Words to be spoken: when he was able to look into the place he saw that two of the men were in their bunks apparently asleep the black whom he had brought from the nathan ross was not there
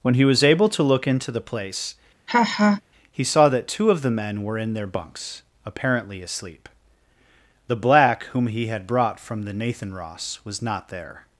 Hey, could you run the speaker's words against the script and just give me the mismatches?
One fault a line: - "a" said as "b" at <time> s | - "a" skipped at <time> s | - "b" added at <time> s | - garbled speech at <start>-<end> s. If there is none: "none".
none